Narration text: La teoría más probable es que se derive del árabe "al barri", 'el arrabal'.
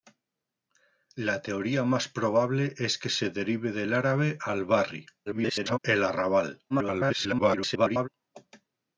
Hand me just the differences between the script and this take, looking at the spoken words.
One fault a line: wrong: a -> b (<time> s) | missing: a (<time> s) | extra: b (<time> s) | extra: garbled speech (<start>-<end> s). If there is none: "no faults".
extra: garbled speech (5.3-5.8 s)
extra: garbled speech (6.7-8.1 s)